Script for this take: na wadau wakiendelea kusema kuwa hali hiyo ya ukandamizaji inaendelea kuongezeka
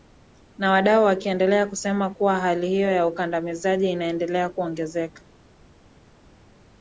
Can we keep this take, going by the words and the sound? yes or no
yes